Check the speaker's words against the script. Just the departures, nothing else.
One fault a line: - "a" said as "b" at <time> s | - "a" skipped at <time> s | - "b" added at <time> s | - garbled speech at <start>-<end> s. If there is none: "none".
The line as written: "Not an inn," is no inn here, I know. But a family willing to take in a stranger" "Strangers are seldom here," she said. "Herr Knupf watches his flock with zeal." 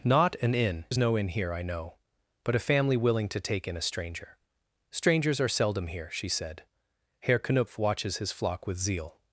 none